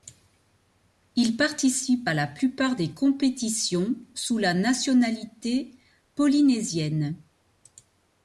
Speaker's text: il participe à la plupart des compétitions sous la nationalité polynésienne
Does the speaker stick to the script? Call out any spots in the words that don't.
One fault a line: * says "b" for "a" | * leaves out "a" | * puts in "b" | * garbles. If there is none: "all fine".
all fine